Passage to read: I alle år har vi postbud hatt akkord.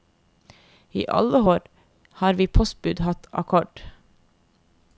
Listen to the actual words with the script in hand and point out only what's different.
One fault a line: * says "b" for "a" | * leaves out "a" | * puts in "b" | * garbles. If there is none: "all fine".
all fine